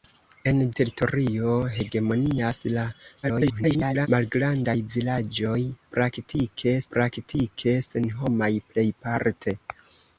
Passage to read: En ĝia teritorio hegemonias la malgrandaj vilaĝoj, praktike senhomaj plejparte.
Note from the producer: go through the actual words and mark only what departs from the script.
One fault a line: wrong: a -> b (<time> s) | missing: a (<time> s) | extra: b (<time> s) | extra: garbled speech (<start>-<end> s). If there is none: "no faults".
missing: ĝia (0.6 s)
extra: garbled speech (3.2-4.1 s)
extra: praktike (6.9 s)